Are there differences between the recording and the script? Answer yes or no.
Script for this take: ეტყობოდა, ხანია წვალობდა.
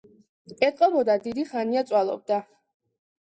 yes